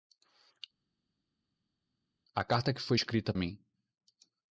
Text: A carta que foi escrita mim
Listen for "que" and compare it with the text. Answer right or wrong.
right